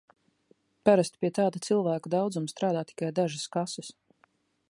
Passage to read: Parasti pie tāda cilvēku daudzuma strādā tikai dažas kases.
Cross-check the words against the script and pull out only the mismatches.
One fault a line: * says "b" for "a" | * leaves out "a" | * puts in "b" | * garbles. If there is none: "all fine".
all fine